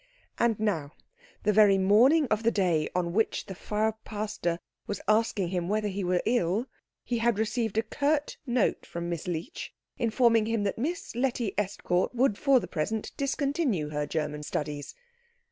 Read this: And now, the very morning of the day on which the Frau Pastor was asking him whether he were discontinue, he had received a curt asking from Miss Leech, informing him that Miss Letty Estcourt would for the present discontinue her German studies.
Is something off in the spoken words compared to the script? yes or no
yes